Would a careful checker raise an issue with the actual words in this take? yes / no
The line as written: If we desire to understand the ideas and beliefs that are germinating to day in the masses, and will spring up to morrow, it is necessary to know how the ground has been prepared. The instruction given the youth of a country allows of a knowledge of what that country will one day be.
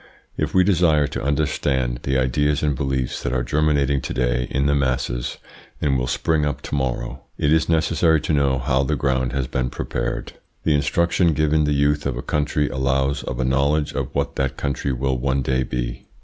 no